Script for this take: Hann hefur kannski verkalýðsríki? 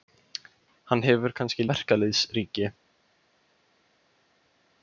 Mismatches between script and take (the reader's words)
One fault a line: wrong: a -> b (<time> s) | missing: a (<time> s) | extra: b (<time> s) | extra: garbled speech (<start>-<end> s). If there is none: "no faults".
no faults